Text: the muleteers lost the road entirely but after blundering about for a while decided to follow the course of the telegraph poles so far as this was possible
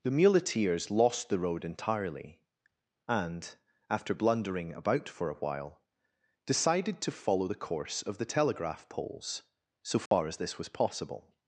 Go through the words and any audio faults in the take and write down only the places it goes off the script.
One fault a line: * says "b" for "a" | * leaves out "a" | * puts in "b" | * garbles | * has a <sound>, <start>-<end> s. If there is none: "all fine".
* says "and" for "but"
* has a dropout, 10.1-10.1 s